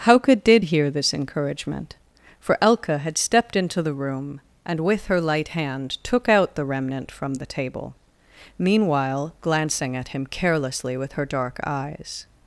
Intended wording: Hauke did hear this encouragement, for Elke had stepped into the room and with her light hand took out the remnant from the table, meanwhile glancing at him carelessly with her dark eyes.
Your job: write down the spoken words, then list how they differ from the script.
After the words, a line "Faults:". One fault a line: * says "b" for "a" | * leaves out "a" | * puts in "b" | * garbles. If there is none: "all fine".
Hauke did hear this encouragement, for Elke had stepped into the room and with her light hand took out the remnant from the table, meanwhile glancing at him carelessly with her dark eyes.
Faults:
all fine